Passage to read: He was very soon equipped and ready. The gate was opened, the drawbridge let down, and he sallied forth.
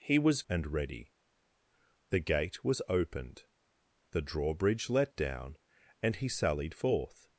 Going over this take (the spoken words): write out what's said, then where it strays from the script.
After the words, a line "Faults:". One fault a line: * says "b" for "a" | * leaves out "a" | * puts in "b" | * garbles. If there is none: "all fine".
He was and ready. The gate was opened, the drawbridge let down, and he sallied forth.
Faults:
* leaves out "very soon equipped"